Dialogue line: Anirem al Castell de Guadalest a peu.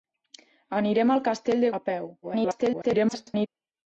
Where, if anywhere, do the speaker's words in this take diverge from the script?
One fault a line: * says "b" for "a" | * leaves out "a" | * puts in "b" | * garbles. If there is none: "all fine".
* leaves out "Guadalest"
* garbles